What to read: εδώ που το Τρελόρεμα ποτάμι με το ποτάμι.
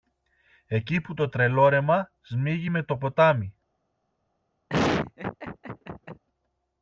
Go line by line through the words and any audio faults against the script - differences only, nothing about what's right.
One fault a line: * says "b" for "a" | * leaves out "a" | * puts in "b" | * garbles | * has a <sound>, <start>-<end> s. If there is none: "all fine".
* says "εκεί" for "εδώ"
* says "σμίγει" for "ποτάμι"
* has a laugh, 4.7-6.2 s